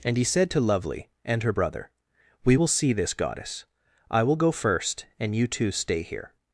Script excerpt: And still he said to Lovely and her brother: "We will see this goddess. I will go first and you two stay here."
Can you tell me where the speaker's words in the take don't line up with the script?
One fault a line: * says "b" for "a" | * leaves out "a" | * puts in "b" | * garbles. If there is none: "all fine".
* leaves out "still"